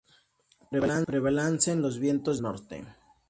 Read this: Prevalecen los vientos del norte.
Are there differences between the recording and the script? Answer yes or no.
yes